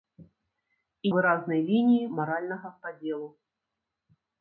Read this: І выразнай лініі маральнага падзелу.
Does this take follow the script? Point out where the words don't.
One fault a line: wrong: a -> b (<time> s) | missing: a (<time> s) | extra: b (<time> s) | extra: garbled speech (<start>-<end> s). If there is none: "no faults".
no faults